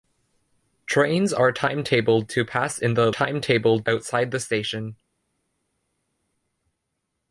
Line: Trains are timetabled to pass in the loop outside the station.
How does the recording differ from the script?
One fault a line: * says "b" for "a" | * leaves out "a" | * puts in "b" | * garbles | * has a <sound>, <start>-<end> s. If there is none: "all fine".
* says "timetabled" for "loop"